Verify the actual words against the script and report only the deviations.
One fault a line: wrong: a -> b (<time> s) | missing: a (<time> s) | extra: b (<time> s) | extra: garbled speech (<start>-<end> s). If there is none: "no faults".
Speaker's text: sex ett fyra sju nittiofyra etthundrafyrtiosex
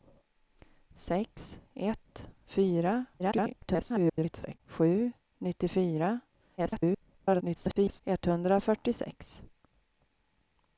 extra: garbled speech (3.2-4.6 s)
extra: garbled speech (6.6-8.0 s)